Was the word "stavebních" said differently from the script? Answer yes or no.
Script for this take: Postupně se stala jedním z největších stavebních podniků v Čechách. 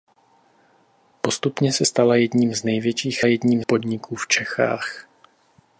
yes